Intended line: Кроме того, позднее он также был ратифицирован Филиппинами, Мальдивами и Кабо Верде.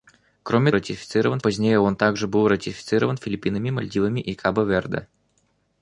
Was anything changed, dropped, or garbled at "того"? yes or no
yes